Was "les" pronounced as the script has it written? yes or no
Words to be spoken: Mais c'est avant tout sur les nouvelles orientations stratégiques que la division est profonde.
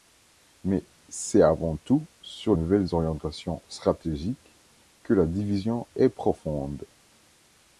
no